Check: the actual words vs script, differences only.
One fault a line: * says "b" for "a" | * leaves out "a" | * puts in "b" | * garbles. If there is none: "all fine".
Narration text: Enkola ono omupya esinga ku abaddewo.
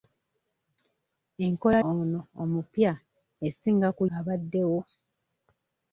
all fine